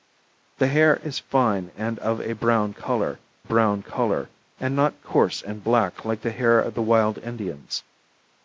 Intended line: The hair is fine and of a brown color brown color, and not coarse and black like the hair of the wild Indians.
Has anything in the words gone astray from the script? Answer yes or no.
no